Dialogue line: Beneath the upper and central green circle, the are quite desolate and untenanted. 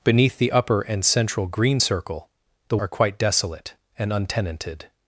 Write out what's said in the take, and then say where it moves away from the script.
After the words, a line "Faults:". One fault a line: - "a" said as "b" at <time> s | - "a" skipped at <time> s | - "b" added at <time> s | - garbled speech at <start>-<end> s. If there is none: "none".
Beneath the upper and central green circle, the are quite desolate and untenanted.
Faults:
none